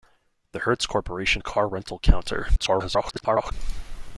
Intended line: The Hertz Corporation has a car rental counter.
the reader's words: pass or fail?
fail